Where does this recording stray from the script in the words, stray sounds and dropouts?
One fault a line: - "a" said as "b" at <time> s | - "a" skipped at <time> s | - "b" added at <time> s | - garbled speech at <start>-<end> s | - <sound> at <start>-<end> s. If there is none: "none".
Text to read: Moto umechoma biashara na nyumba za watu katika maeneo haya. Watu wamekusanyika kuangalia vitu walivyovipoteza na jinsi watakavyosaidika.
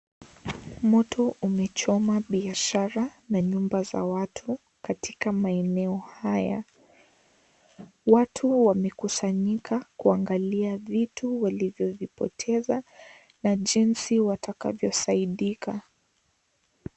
none